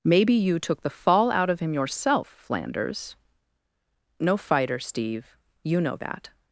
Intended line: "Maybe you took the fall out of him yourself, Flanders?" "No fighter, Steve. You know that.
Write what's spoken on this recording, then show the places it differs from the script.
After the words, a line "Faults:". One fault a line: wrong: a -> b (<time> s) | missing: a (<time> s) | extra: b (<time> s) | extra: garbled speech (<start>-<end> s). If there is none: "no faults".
"Maybe you took the fall out of him yourself, Flanders?" "No fighter, Steve. You know that.
Faults:
no faults